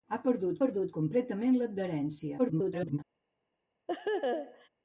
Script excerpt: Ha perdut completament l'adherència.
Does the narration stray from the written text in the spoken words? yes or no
yes